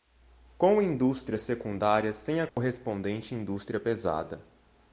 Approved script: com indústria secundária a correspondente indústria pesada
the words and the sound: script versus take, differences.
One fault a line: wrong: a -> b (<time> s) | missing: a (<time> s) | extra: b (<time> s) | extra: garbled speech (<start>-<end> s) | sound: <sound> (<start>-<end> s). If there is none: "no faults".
extra: sem (2.1 s)
sound: dropout (2.5-2.6 s)